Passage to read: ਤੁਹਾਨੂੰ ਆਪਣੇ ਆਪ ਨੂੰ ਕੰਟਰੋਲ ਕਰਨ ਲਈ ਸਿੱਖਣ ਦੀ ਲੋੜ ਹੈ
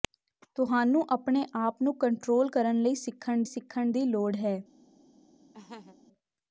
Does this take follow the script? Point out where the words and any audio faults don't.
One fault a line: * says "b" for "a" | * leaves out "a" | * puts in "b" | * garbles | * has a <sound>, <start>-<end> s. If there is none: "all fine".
* puts in "ਸਿੱਖਣ"
* has a laugh, 5.5-6.0 s